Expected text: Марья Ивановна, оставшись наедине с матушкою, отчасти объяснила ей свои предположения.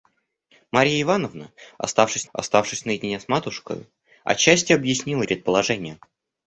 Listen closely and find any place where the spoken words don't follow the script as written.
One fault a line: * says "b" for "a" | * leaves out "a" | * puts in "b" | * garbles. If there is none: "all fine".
* puts in "оставшись"
* leaves out "ей свои"